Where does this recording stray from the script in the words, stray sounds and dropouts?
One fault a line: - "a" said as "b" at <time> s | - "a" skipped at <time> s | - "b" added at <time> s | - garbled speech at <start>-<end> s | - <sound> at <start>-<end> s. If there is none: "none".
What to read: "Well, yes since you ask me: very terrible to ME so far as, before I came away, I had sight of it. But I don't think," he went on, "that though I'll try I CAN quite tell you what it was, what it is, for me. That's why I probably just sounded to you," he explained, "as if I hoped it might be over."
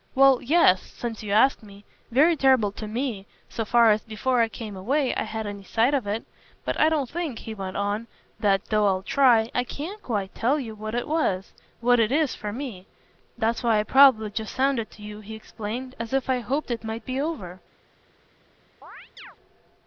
- "any" added at 5.5 s
- chirp at 18.8-19.4 s